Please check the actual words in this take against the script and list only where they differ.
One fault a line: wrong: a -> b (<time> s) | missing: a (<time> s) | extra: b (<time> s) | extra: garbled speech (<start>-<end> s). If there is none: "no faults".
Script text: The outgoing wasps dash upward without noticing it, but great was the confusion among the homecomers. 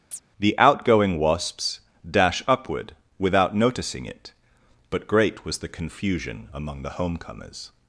no faults